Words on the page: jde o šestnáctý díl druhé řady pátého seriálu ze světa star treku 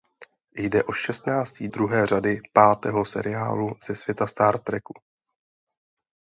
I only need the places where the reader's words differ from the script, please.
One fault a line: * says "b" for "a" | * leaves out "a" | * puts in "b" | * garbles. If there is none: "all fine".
* leaves out "díl"